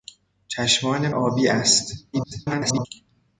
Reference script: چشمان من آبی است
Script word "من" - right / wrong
wrong